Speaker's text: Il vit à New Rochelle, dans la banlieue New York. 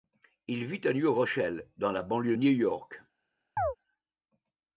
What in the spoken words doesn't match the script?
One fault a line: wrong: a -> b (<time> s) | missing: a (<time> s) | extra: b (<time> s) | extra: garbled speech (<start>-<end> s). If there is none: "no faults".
no faults